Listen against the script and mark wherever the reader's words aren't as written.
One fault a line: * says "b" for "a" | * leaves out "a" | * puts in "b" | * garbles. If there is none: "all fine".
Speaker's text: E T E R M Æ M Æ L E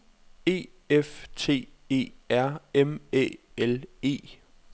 * puts in "F"
* leaves out "M Æ"